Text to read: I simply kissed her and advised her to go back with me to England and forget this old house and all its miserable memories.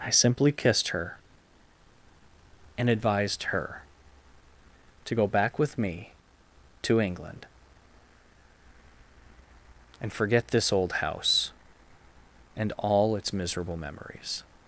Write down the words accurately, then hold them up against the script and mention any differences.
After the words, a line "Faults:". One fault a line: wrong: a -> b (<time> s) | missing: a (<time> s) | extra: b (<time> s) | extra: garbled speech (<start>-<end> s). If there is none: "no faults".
I simply kissed her and advised her to go back with me to England and forget this old house and all its miserable memories.
Faults:
no faults